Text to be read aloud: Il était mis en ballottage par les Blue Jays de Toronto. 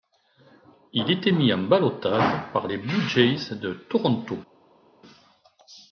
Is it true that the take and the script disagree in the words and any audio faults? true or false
false